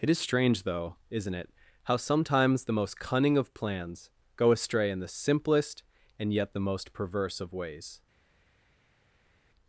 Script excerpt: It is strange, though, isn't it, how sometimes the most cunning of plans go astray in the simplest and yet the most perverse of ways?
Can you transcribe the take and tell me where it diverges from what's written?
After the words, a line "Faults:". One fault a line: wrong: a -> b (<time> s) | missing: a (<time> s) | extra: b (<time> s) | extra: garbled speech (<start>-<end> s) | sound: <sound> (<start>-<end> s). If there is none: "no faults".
It is strange, though, isn't it, how sometimes the most cunning of plans go astray in the simplest and yet the most perverse of ways?
Faults:
no faults